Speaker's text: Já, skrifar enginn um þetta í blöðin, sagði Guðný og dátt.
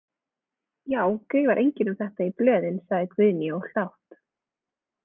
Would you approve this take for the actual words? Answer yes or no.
yes